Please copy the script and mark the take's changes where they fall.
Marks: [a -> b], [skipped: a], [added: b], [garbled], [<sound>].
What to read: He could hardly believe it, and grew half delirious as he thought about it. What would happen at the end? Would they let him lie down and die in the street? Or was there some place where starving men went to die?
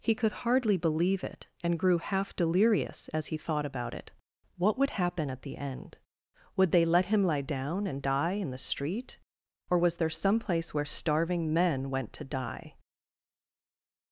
He could hardly believe it, and grew half delirious as he thought about it. What would happen at the end? Would they let him lie down and die in the street? Or was there some place where starving men went to die?